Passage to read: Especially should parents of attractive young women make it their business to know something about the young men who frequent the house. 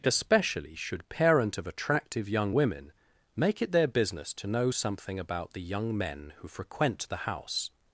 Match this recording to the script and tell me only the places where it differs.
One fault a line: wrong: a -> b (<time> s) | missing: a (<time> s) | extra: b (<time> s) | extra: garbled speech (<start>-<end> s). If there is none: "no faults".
wrong: parents -> parent (1.1 s)